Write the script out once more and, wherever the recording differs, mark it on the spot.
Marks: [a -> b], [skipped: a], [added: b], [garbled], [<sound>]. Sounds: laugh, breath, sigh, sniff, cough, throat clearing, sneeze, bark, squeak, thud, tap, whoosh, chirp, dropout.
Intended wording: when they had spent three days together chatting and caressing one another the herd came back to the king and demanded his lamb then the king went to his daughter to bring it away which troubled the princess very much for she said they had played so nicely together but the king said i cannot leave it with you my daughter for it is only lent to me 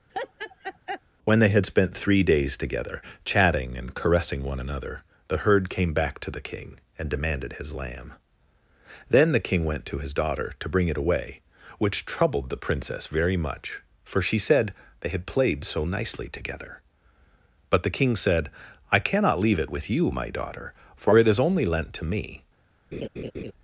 [laugh] when they had spent three days together chatting and caressing one another the herd came back to the king and demanded his lamb then the king went to his daughter to bring it away which troubled the princess very much for she said they had played so nicely together but the king said i cannot leave it with you my daughter for it is only lent to me [laugh]